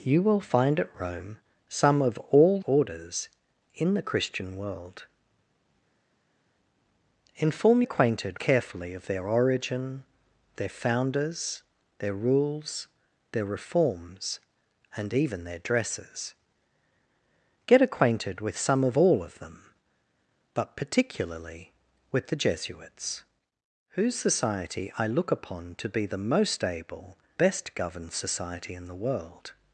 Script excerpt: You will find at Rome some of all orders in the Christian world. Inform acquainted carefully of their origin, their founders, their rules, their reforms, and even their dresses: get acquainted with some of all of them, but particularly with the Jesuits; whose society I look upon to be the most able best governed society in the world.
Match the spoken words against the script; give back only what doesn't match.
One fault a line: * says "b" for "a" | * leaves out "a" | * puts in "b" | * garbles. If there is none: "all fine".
all fine